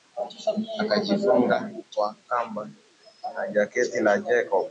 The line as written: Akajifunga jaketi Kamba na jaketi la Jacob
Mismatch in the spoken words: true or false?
true